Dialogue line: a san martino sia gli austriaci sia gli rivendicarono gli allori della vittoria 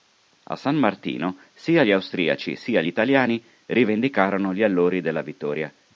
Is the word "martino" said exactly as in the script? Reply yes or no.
yes